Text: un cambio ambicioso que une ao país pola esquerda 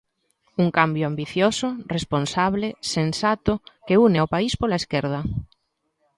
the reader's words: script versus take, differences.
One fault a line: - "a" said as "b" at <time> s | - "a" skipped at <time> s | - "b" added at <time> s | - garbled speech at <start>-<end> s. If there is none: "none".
- "responsable sensato" added at 1.9 s